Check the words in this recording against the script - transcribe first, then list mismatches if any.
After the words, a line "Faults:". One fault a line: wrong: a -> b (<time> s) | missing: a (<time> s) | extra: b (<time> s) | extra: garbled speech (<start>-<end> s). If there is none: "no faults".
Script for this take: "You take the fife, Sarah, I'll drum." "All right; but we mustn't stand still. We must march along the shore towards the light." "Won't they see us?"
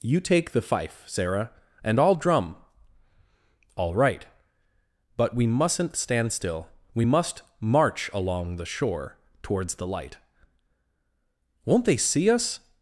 "You take the fife, Sarah, and I'll drum." "All right; but we mustn't stand still. We must march along the shore towards the light." "Won't they see us?"
Faults:
extra: and (1.8 s)